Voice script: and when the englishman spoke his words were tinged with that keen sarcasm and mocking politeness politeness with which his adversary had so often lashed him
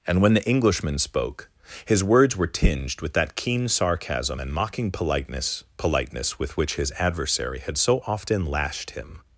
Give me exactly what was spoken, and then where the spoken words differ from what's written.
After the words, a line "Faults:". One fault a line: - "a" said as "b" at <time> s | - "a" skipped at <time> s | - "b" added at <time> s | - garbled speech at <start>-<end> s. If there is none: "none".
and when the englishman spoke his words were tinged with that keen sarcasm and mocking politeness politeness with which his adversary had so often lashed him
Faults:
none